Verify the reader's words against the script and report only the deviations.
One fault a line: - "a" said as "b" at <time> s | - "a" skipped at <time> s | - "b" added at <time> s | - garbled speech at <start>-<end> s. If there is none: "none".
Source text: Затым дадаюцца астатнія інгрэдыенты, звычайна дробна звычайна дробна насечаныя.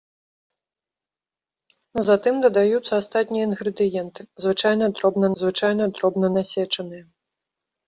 none